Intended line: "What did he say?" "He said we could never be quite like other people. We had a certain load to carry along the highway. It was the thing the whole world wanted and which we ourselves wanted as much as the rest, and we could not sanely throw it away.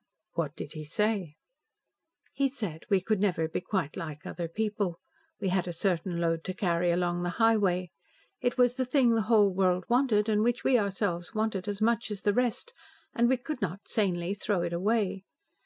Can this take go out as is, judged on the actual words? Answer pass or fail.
pass